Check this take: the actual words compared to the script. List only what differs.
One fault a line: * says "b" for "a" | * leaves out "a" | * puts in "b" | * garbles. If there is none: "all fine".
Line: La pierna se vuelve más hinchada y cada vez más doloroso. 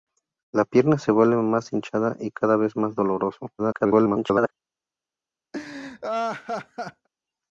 * garbles